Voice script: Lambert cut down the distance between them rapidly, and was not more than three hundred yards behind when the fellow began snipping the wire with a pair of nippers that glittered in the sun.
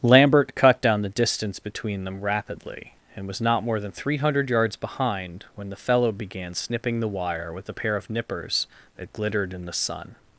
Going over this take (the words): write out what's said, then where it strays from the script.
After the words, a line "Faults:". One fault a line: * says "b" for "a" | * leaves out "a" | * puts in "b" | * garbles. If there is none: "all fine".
Lambert cut down the distance between them rapidly, and was not more than three hundred yards behind when the fellow began snipping the wire with a pair of nippers that glittered in the sun.
Faults:
all fine